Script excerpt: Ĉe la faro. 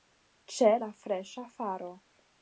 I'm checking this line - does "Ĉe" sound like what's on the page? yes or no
yes